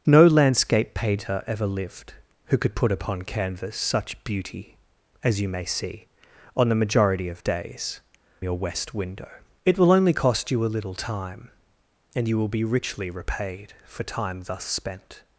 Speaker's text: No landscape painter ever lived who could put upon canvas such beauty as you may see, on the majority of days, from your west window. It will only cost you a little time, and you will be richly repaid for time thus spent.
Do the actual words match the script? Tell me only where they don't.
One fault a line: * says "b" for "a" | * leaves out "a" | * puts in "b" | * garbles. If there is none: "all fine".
* leaves out "from"